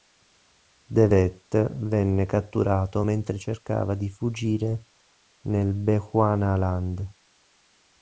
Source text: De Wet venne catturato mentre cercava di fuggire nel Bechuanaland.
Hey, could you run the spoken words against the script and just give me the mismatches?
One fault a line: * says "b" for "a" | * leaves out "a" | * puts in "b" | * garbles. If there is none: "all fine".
all fine